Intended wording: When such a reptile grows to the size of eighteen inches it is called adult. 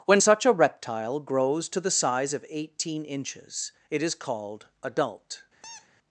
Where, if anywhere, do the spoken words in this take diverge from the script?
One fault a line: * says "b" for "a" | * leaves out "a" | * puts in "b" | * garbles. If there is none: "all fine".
all fine